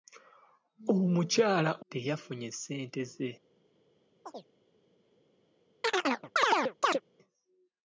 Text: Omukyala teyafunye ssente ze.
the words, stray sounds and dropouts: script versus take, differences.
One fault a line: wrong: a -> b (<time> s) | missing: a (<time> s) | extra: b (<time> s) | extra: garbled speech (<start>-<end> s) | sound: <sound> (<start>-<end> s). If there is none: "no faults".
sound: chirp (4.2-4.5 s)
sound: chirp (5.8-7.0 s)